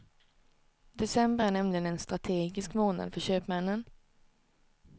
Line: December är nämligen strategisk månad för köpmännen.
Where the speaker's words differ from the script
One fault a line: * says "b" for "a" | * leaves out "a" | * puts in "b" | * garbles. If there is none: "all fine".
* puts in "en"